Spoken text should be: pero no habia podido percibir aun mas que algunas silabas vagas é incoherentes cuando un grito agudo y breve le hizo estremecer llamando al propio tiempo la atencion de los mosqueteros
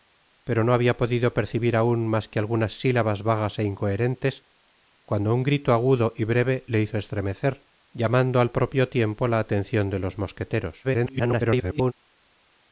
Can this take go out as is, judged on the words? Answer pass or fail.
fail